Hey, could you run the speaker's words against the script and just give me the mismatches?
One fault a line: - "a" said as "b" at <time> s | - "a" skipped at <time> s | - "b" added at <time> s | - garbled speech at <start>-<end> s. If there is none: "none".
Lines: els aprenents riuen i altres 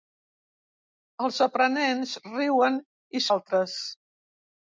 none